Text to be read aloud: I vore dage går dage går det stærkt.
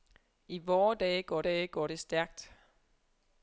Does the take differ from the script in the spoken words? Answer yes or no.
no